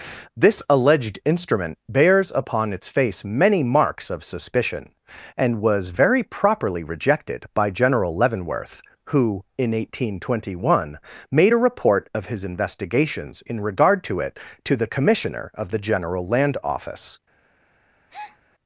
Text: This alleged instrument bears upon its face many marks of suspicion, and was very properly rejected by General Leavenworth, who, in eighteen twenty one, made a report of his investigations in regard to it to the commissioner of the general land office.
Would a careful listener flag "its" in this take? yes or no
no